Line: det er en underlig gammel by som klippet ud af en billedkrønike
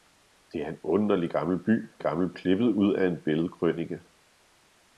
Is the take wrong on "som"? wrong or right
wrong